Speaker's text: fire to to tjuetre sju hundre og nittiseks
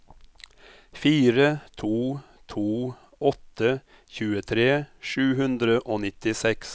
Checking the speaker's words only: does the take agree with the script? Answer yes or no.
no